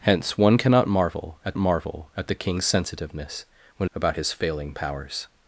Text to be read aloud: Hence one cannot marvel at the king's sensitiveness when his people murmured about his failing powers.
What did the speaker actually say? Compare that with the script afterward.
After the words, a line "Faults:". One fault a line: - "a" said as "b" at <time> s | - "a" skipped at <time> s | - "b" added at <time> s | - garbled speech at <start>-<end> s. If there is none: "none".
Hence one cannot marvel at marvel at the king's sensitiveness when about his failing powers.
Faults:
- "marvel at" added at 1.6 s
- "his people murmured" skipped at 3.9 s